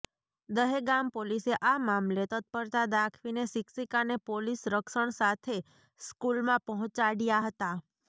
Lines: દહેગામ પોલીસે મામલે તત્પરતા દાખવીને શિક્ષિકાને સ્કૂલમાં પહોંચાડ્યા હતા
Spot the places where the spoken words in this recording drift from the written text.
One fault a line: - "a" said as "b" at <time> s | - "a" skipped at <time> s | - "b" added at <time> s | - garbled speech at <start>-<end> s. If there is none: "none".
- "આ" added at 1.6 s
- "પોલીસ રક્ષણ સાથે" added at 4.3 s